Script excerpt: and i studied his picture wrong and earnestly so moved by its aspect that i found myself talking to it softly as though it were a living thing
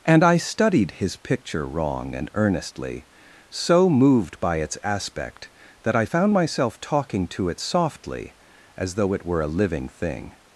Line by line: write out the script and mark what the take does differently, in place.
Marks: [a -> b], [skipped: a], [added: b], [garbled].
and i studied his picture wrong and earnestly so moved by its aspect that i found myself talking to it softly as though it were a living thing